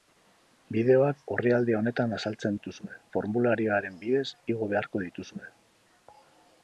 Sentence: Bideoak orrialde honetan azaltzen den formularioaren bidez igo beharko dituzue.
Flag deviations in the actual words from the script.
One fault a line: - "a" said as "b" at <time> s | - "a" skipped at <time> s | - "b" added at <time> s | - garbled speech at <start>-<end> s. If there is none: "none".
- "den" said as "dituzue" at 2.6 s